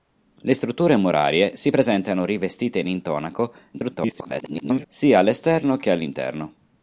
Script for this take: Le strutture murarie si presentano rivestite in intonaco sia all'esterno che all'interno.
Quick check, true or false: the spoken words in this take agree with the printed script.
false